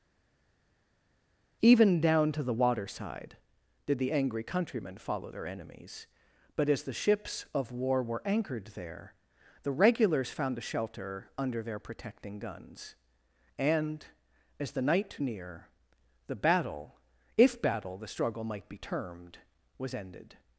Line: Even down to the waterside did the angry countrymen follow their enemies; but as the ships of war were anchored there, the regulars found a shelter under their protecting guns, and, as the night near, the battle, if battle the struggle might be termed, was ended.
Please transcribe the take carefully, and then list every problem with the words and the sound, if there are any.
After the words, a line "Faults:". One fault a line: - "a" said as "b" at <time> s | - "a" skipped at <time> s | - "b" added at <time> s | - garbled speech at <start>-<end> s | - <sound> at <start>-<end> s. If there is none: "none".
Even down to the waterside did the angry countrymen follow their enemies; but as the ships of war were anchored there, the regulars found a shelter under their protecting guns, and, as the night near, the battle, if battle the struggle might be termed, was ended.
Faults:
none